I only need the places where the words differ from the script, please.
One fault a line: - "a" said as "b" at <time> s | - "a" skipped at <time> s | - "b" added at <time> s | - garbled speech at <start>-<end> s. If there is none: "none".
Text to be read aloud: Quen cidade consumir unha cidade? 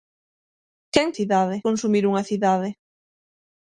none